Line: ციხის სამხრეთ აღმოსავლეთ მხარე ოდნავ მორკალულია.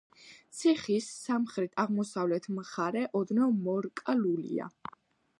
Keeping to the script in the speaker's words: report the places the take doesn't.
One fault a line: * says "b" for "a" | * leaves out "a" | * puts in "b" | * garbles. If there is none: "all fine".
all fine